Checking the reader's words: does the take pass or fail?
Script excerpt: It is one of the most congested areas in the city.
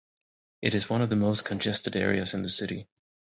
pass